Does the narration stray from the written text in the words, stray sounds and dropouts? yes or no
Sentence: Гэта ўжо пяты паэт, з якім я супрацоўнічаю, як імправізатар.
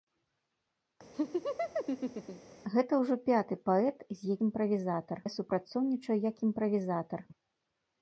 yes